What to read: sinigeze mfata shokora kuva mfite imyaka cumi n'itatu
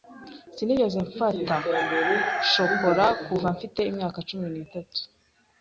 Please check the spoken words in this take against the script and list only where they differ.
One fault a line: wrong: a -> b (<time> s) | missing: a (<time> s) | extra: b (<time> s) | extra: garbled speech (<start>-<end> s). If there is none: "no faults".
no faults